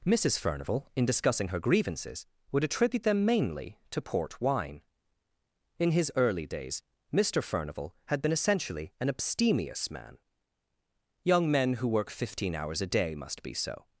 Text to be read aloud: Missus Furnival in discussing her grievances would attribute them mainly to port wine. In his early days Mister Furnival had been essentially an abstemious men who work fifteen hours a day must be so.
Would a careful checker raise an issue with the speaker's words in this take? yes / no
yes